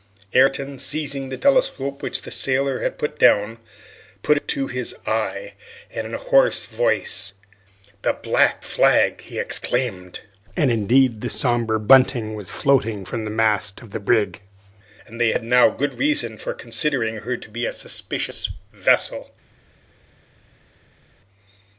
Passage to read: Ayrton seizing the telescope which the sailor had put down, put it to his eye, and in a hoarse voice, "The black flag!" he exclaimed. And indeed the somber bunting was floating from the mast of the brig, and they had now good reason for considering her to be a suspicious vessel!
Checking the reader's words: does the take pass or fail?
pass